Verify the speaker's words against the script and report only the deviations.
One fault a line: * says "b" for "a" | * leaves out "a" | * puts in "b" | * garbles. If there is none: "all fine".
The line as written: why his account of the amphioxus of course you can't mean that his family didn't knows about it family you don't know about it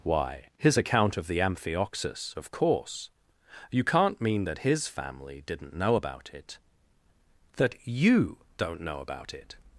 * says "know" for "knows"
* says "that" for "family"